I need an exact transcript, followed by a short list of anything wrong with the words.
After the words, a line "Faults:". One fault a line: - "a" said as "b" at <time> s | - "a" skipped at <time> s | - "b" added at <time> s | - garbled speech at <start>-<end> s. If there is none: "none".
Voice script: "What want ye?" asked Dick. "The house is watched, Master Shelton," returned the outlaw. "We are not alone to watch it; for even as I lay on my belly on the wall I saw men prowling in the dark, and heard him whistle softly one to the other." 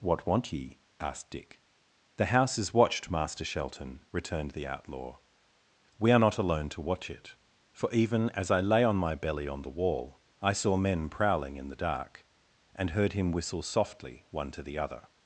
"What want ye?" asked Dick. "The house is watched, Master Shelton," returned the outlaw. "We are not alone to watch it; for even as I lay on my belly on the wall I saw men prowling in the dark, and heard him whistle softly one to the other."
Faults:
none